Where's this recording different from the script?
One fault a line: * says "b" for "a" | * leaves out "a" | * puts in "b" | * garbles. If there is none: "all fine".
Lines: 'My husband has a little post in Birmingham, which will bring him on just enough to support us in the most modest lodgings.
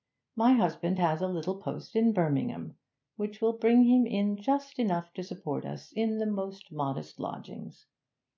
* says "in" for "on"